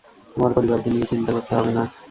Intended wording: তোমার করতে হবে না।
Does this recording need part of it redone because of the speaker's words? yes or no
yes